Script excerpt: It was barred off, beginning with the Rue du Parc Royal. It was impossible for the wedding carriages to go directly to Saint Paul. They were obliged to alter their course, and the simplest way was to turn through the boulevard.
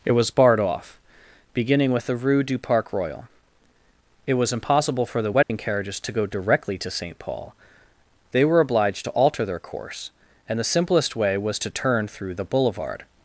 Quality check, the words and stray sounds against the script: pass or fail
fail